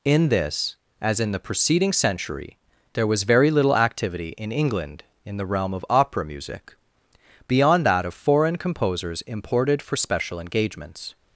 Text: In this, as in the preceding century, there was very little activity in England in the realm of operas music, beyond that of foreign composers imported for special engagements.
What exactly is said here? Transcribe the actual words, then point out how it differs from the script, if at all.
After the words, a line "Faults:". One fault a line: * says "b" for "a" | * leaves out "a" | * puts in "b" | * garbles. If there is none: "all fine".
In this, as in the preceding century, there was very little activity in England in the realm of opera music, beyond that of foreign composers imported for special engagements.
Faults:
* says "opera" for "operas"